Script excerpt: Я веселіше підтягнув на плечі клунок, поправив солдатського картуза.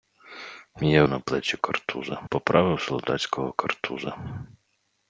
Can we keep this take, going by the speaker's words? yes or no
no